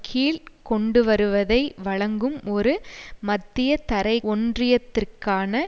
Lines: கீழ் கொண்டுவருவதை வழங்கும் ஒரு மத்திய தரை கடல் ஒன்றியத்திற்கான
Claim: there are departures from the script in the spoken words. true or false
true